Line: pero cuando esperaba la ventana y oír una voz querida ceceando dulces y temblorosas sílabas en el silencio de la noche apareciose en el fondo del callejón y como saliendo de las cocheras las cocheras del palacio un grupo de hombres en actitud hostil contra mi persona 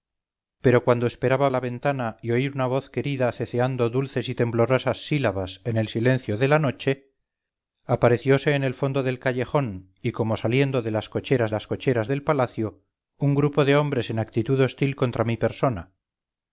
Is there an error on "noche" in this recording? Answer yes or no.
no